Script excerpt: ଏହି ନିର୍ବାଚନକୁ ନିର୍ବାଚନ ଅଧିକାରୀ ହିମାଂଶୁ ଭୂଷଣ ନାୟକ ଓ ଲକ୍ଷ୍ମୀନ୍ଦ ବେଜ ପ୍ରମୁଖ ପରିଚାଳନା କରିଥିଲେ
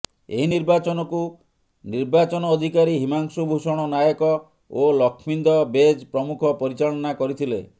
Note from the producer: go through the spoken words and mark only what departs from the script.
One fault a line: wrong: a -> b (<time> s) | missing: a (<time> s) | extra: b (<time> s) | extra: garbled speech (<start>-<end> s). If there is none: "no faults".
no faults